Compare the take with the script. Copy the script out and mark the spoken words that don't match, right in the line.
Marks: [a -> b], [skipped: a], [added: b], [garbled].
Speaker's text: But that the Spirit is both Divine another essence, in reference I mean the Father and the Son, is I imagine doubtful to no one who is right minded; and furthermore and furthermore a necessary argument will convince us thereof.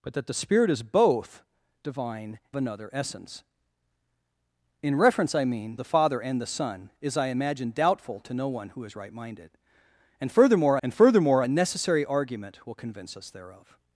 But that the Spirit is both Divine another essence, in reference I mean the Father and the Son, is I imagine doubtful to no one who is right minded; and furthermore and furthermore a necessary argument will convince us thereof.